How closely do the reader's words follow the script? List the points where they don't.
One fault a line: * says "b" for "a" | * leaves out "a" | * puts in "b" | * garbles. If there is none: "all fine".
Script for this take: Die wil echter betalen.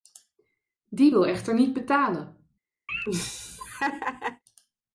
* puts in "niet"